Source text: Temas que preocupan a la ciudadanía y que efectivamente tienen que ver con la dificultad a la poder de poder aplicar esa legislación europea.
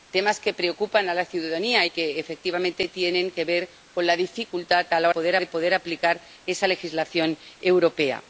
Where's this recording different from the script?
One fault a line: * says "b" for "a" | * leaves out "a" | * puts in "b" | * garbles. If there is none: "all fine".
all fine